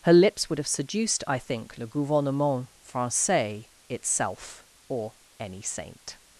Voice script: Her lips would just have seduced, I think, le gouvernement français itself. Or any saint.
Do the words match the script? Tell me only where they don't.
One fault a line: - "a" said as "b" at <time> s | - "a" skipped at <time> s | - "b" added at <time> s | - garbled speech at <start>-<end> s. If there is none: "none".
- "just" skipped at 0.6 s